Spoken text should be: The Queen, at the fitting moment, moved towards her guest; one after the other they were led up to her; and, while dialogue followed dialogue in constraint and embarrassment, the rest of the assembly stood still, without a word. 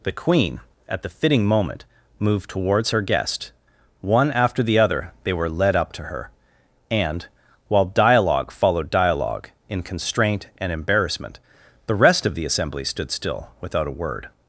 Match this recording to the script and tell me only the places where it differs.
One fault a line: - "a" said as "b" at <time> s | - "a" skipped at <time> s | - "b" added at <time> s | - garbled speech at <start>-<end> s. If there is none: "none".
none